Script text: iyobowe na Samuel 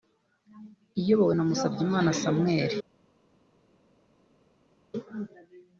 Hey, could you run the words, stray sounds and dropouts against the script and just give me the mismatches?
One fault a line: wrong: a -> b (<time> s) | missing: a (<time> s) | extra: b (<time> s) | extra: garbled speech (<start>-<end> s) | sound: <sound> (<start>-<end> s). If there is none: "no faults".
extra: Musabyimana (1.5 s)